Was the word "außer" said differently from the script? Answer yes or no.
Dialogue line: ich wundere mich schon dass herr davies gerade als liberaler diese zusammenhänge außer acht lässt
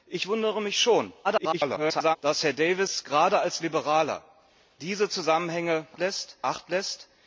yes